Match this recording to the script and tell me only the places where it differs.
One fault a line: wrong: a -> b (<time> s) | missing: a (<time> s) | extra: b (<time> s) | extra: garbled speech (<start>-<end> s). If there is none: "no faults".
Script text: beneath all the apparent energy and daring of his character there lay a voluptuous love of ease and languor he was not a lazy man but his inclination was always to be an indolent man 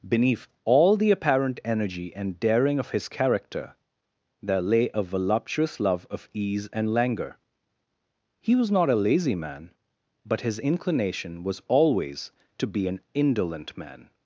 no faults